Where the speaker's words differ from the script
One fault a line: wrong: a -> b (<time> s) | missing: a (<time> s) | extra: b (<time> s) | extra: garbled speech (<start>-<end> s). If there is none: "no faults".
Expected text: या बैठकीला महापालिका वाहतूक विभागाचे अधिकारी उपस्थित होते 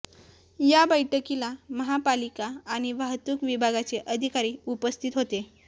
extra: आणि (2.7 s)